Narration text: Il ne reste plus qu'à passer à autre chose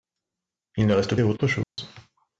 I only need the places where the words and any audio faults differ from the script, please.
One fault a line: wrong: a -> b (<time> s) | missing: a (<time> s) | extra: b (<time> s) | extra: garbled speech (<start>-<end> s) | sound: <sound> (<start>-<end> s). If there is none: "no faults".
missing: plus qu'à passer (1.1 s)
sound: dropout (1.6-1.8 s)